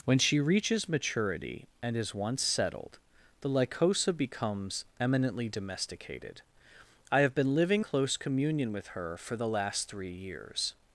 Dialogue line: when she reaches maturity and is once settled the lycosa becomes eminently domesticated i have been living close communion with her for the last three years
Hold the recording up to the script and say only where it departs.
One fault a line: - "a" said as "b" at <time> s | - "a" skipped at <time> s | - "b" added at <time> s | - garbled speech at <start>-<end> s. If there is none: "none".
none